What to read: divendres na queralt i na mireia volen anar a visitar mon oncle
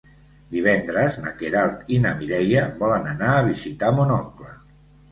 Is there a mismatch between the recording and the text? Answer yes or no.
no